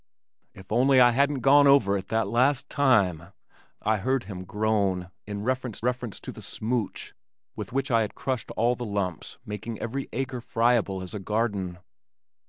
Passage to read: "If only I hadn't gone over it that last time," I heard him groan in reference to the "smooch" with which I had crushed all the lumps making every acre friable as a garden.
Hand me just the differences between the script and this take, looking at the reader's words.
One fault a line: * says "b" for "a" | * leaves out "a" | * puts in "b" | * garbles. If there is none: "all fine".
* puts in "reference"